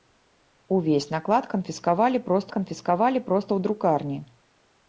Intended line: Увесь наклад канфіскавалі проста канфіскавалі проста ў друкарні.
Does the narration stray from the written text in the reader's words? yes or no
no